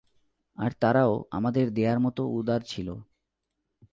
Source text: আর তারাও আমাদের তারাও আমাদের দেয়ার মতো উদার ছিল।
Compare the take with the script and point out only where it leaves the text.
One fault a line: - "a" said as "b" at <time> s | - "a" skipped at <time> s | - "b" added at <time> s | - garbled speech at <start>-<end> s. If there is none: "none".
- "তারাও আমাদের" skipped at 1.6 s